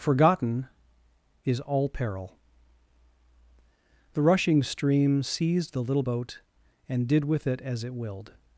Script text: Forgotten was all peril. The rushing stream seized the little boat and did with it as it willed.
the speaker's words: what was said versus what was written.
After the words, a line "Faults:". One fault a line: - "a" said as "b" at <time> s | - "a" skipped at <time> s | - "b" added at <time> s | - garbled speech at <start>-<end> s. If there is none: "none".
Forgotten is all peril. The rushing stream seized the little boat and did with it as it willed.
Faults:
- "was" said as "is" at 1.4 s